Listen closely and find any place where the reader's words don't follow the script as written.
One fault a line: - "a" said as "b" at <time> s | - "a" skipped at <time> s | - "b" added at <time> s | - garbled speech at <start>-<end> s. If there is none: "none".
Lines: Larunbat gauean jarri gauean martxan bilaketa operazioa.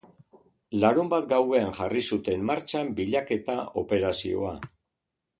- "gauean" said as "zuten" at 2.1 s